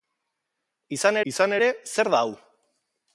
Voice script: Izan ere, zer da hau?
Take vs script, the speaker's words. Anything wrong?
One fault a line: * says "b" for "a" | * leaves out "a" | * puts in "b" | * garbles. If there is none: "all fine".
* puts in "izan"